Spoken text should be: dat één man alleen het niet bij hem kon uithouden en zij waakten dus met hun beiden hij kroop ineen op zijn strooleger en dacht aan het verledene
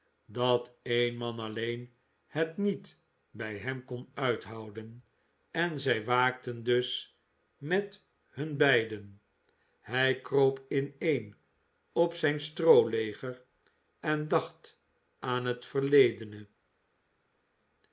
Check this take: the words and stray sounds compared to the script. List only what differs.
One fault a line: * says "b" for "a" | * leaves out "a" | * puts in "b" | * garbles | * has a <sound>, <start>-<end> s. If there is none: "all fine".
all fine